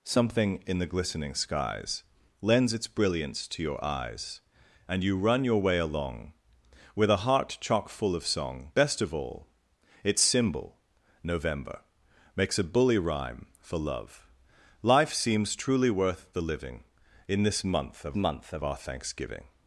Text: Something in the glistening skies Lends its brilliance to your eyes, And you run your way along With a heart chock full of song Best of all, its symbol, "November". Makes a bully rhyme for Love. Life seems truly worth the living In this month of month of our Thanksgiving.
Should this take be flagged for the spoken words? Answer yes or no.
no